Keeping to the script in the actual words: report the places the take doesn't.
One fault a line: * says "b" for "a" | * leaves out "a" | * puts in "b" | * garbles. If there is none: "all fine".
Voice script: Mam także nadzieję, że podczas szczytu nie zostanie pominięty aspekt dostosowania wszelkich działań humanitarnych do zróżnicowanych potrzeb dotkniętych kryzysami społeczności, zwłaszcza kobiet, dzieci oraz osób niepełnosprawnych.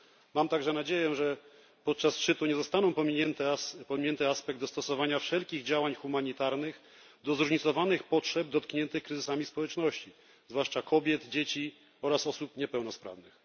all fine